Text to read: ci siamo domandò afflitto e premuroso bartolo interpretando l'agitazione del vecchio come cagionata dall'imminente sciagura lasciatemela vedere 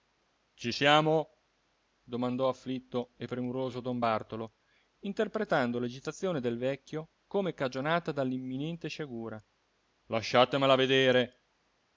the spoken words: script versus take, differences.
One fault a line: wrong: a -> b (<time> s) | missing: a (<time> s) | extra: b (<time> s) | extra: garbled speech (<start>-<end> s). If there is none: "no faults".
extra: don (3.8 s)